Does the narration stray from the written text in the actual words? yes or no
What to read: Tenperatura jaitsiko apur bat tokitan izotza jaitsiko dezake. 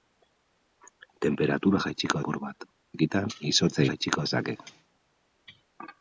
no